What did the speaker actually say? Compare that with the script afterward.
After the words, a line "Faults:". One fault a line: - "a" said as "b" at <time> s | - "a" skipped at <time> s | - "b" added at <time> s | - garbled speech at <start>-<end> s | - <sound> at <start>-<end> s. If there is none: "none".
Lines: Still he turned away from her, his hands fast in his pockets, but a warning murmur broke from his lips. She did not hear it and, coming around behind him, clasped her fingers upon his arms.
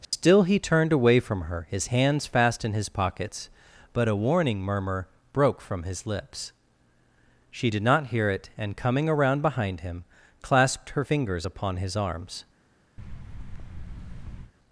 Still he turned away from her, his hands fast in his pockets, but a warning murmur broke from his lips. She did not hear it and, coming around behind him, clasped her fingers upon his arms.
Faults:
- dropout at 0.0-0.1 s
- thud at 13.0-14.5 s